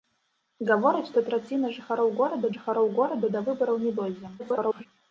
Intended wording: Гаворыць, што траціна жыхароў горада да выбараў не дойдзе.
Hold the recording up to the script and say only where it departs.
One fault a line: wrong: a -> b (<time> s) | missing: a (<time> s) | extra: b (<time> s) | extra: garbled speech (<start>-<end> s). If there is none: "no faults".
extra: жыхароў горада (2.5 s)
extra: garbled speech (4.4-4.9 s)